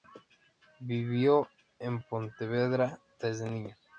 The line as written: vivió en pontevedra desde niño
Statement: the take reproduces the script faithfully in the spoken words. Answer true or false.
true